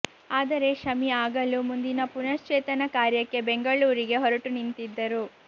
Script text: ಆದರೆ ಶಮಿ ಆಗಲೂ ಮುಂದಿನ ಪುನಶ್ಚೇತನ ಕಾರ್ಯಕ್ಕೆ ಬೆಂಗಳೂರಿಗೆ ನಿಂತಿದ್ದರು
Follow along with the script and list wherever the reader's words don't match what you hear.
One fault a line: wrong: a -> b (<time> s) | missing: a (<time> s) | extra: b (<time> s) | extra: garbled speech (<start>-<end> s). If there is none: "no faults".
extra: ಹೊರಟು (4.2 s)